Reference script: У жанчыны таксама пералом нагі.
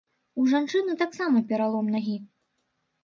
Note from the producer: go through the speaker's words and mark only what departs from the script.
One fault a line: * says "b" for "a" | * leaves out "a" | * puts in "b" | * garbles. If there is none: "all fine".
all fine